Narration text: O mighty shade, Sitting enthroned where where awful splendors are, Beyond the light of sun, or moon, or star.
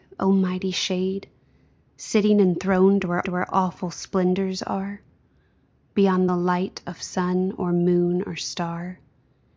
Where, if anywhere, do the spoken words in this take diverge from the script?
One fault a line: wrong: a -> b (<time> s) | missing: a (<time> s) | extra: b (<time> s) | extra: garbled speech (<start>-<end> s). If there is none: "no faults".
no faults